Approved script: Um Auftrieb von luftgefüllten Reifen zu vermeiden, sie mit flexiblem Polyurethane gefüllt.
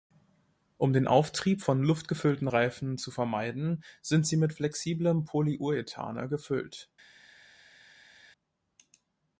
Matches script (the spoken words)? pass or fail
fail